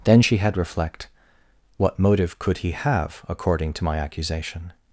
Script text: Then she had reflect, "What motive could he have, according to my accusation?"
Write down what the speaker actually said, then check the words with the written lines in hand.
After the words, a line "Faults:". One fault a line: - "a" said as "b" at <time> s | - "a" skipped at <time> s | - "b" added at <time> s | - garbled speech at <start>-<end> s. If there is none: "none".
Then she had reflect, "What motive could he have, according to my accusation?"
Faults:
none